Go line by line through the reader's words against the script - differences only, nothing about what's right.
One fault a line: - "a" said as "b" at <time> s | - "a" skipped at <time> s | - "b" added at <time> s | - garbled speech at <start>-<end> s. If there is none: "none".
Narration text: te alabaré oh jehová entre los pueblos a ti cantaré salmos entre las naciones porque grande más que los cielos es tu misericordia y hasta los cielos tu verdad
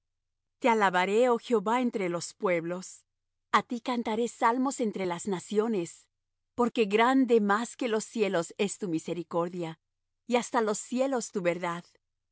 none